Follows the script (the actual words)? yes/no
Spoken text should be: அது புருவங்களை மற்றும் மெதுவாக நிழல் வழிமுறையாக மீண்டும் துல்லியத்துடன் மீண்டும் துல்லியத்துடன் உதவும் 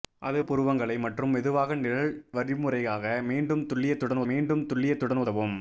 yes